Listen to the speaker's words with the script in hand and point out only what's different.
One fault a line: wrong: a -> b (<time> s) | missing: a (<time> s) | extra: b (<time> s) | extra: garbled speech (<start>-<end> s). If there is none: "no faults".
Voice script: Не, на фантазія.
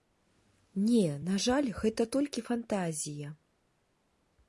extra: жаль гэта толькі (1.4 s)